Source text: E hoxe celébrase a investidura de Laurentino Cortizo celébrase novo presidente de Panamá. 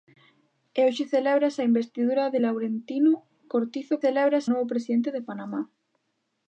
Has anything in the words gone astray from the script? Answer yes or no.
no